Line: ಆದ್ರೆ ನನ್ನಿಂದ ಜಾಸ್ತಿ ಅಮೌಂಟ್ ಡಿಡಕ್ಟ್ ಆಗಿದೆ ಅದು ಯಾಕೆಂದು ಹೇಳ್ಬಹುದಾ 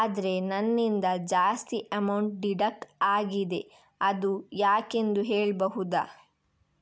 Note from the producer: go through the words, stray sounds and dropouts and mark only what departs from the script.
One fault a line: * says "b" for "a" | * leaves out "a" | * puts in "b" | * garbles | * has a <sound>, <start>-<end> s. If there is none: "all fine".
all fine